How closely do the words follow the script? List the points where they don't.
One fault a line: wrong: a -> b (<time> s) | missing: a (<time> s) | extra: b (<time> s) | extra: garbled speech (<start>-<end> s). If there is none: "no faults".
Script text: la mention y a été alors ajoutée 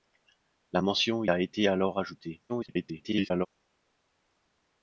missing: y (1.2 s)
extra: garbled speech (2.5-3.5 s)